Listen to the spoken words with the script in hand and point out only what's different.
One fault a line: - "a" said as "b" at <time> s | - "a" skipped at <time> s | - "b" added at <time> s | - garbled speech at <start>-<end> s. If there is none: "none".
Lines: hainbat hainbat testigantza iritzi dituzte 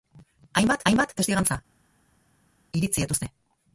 none